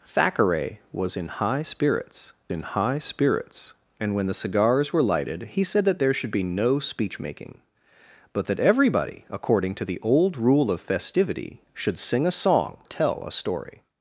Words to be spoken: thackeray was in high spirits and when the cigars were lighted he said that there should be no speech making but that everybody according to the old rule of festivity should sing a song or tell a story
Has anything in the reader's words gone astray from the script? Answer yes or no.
yes